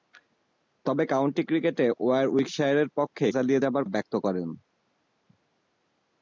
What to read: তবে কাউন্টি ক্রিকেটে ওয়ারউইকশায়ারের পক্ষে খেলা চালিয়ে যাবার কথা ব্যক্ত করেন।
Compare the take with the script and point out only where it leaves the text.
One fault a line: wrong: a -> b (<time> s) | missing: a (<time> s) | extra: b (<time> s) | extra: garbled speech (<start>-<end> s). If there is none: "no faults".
missing: খেলা (3.2 s)
missing: কথা (3.8 s)